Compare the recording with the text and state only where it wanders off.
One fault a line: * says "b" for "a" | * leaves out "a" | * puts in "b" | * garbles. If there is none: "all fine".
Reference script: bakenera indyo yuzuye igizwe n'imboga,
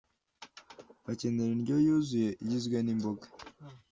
all fine